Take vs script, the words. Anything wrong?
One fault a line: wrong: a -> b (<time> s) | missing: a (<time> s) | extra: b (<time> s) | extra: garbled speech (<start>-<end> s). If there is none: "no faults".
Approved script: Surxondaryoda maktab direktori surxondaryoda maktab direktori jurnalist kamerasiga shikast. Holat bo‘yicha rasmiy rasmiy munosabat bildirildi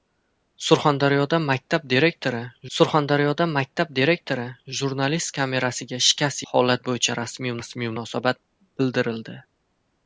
no faults